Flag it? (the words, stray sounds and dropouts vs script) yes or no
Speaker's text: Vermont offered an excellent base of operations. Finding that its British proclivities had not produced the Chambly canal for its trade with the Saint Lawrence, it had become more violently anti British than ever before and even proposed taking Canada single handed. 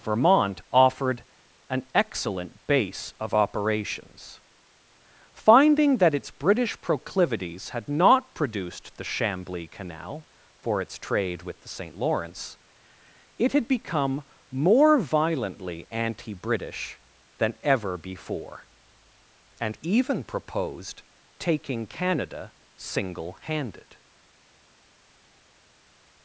no